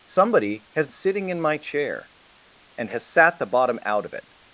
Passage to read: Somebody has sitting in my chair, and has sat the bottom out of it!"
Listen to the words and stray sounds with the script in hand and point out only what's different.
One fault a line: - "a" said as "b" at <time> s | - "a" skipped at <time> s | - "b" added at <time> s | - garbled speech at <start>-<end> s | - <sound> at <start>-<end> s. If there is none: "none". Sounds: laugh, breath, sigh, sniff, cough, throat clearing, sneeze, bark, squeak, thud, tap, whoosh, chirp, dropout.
none